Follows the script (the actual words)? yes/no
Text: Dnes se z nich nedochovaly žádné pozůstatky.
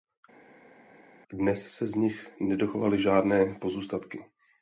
yes